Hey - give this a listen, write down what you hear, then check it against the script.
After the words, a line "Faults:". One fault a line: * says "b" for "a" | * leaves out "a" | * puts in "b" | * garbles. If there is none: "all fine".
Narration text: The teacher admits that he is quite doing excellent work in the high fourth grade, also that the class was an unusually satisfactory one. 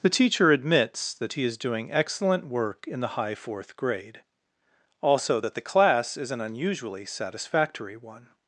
The teacher admits that he is doing excellent work in the high fourth grade, also that the class is an unusually satisfactory one.
Faults:
* leaves out "quite"
* says "is" for "was"